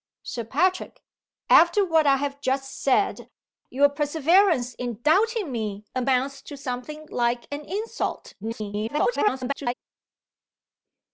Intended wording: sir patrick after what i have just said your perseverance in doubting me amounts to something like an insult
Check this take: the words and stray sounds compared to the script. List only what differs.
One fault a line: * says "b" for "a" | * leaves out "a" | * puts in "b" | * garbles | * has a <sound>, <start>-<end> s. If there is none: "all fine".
* garbles